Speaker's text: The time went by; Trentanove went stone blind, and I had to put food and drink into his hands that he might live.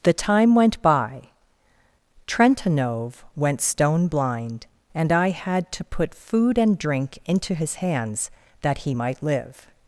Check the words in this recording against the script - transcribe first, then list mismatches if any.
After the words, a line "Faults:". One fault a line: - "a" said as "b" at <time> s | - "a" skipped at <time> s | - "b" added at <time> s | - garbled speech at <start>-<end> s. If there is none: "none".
The time went by; Trentanove went stone blind, and I had to put food and drink into his hands that he might live.
Faults:
none